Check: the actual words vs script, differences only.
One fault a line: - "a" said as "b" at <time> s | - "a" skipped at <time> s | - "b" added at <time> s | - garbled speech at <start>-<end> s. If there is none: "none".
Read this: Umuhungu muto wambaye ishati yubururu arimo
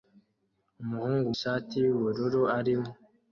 - "muto wambaye" skipped at 1.3 s